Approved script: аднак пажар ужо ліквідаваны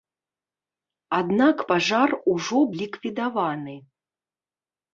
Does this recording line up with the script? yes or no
yes